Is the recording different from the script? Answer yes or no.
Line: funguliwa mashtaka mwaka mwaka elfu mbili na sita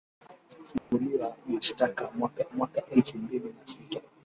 no